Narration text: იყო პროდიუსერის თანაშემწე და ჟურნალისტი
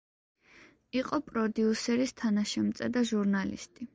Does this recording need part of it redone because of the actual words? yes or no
no